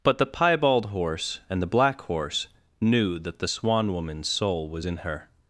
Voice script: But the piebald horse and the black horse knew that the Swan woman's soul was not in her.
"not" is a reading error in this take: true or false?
true